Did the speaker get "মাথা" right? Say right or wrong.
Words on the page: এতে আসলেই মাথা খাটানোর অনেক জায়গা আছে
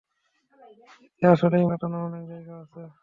wrong